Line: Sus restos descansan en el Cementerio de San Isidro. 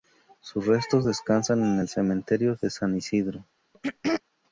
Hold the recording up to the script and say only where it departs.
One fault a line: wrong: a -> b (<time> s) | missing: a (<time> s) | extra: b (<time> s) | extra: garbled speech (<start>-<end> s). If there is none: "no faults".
no faults